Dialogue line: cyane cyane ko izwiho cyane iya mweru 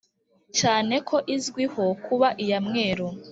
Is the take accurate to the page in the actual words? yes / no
no